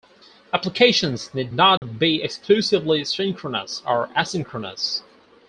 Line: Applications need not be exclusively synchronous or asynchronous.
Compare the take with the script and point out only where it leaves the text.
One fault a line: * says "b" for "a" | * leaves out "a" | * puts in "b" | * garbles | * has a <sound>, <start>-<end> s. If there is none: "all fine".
* has a dropout, 1.8-1.8 s